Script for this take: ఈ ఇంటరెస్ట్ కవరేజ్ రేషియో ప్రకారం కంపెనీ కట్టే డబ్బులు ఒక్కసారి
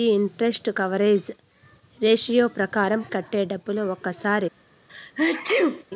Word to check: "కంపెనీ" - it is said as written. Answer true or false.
false